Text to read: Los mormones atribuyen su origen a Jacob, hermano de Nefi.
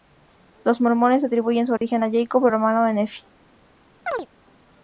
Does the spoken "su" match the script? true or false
true